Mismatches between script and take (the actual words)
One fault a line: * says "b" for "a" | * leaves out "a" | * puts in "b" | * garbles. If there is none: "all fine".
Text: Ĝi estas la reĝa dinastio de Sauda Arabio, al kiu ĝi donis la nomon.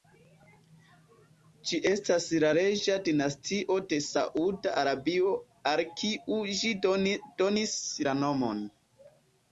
all fine